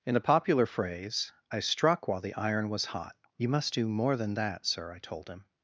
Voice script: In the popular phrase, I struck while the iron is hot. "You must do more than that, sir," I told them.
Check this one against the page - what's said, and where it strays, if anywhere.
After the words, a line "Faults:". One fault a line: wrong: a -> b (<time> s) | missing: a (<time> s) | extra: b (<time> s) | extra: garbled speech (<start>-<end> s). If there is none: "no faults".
In the popular phrase, I struck while the iron was hot. "You must do more than that, sir," I told him.
Faults:
wrong: is -> was (2.7 s)
wrong: them -> him (5.3 s)